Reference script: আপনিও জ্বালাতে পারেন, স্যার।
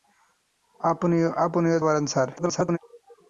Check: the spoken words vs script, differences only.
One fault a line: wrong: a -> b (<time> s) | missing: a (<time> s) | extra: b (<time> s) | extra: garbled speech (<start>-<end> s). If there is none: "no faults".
missing: জ্বালাতে (1.8 s)
extra: garbled speech (2.4-2.8 s)